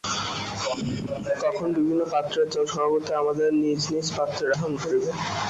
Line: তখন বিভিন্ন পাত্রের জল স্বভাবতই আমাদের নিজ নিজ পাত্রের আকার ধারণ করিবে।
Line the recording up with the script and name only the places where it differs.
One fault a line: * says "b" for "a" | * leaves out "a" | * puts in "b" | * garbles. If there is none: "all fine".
* leaves out "আকার"